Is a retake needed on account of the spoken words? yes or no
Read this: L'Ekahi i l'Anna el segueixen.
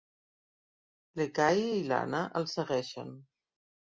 no